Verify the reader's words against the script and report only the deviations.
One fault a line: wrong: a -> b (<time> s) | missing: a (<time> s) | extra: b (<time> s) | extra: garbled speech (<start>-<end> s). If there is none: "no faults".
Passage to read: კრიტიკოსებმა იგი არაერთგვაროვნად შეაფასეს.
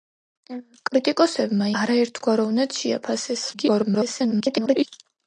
missing: იგი (1.7 s)
extra: garbled speech (3.5-4.9 s)